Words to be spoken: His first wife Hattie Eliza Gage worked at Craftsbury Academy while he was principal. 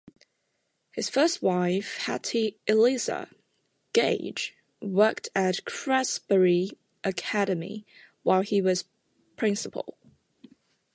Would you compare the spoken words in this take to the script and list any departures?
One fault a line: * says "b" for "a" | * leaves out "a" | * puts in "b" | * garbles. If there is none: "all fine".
all fine